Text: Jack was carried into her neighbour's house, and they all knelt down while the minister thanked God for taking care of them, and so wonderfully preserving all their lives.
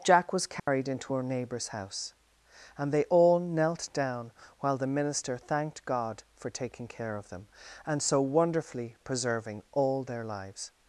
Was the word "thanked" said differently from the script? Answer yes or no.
no